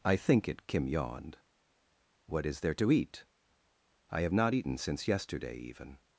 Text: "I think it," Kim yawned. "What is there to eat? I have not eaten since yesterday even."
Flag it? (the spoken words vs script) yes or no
no